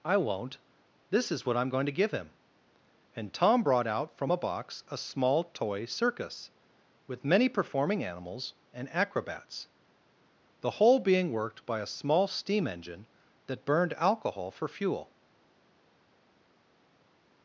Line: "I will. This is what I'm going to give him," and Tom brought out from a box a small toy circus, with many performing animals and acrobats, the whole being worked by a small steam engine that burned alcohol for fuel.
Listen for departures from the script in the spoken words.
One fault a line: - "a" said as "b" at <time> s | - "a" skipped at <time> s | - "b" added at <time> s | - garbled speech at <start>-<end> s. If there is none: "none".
- "will" said as "won't" at 0.2 s